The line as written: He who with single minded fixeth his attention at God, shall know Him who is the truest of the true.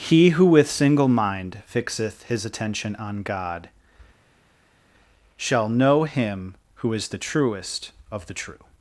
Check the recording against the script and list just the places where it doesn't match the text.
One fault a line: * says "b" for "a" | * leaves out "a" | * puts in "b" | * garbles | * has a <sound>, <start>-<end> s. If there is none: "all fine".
* says "mind" for "minded"
* says "on" for "at"